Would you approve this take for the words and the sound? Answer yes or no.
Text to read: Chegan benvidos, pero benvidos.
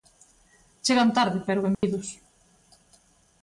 no